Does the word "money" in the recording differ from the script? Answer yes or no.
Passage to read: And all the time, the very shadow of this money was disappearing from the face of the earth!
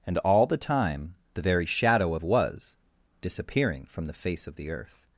yes